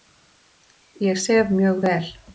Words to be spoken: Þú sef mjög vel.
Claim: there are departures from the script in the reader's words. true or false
true